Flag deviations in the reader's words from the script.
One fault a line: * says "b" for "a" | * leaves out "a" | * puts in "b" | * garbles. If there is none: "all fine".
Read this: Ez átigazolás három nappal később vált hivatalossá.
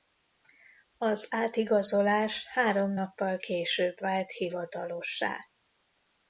* says "Az" for "Ez"